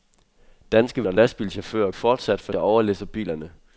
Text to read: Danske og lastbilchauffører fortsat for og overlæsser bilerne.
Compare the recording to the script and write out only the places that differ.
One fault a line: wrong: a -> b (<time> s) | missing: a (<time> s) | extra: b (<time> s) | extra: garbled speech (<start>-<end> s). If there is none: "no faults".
no faults